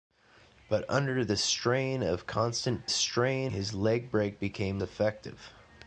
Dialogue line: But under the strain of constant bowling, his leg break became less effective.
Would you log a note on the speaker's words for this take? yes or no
yes